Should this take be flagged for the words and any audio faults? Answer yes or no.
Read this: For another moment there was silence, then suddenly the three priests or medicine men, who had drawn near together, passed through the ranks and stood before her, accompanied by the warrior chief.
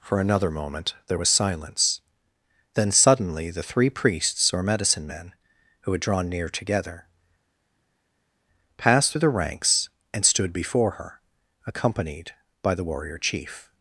no